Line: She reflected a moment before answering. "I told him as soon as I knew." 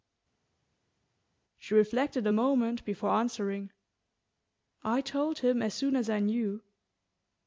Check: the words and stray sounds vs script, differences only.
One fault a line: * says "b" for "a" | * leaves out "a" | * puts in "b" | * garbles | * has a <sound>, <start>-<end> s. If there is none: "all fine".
all fine